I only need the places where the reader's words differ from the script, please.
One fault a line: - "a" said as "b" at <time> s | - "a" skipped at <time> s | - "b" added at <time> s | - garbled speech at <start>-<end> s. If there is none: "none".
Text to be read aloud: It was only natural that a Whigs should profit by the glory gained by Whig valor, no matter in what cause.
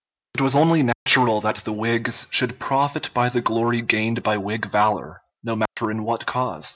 - "a" said as "the" at 1.6 s